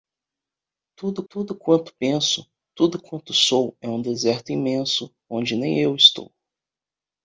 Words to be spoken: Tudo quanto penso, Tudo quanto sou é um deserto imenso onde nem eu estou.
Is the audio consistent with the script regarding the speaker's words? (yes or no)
no